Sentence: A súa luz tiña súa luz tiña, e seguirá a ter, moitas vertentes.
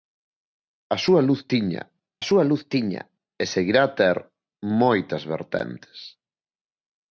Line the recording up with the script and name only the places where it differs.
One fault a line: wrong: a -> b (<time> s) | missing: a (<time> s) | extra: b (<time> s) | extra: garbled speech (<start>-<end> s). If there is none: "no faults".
no faults